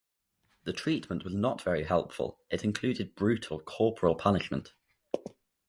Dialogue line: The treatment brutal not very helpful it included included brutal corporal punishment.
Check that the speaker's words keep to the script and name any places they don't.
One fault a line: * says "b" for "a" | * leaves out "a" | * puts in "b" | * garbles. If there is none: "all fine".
* says "was" for "brutal"
* leaves out "included"